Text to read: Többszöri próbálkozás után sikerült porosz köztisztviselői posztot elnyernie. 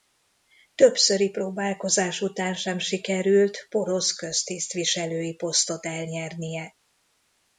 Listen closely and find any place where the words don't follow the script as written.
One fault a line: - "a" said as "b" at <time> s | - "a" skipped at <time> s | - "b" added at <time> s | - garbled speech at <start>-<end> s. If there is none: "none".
- "sem" added at 2.5 s